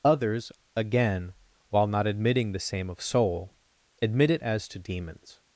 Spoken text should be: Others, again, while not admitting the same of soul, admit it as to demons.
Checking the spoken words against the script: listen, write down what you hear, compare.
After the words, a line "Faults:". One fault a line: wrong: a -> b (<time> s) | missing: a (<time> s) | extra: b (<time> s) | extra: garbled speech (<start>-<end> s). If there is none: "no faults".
Others, again, while not admitting the same of soul, admit it as to demons.
Faults:
no faults